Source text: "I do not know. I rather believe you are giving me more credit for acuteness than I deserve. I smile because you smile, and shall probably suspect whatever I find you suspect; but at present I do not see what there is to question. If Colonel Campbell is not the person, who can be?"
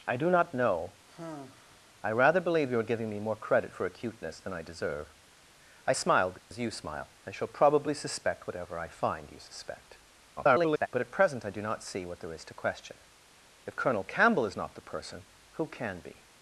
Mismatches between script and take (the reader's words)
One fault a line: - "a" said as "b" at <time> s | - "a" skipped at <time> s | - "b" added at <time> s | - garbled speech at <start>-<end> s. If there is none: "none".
- garbled speech at 10.4-10.9 s